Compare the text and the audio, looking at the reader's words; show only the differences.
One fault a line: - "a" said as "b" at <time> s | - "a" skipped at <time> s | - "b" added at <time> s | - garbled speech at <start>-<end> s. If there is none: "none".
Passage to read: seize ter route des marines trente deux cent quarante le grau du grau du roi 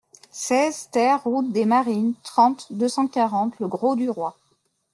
- "grau du" skipped at 4.1 s